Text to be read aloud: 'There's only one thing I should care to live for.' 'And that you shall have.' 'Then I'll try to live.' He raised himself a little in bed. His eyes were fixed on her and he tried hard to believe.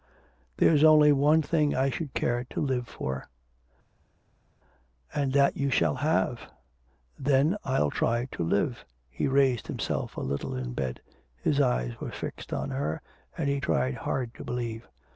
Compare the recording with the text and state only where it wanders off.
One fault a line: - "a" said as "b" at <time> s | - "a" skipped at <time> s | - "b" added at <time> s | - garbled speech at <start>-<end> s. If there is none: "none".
none